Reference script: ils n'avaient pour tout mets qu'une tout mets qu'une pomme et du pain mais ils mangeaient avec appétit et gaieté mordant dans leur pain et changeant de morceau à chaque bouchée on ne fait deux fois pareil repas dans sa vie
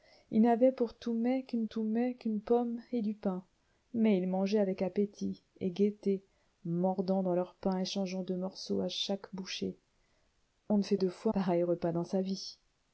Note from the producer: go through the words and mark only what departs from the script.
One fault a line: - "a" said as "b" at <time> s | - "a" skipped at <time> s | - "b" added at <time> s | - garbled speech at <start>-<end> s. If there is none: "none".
none